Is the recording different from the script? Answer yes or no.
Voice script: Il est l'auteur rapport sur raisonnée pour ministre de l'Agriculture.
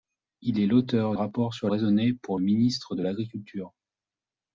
no